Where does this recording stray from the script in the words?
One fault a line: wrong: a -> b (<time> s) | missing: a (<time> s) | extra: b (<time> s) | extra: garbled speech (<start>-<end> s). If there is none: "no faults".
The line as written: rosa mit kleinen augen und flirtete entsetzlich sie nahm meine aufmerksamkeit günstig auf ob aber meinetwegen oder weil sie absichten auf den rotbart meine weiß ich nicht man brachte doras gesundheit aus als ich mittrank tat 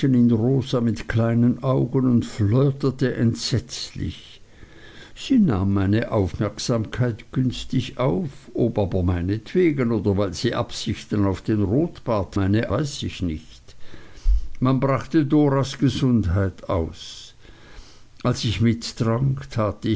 no faults